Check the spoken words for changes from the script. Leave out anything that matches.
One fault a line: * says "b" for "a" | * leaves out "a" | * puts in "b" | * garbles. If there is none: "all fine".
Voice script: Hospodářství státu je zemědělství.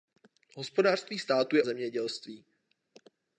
all fine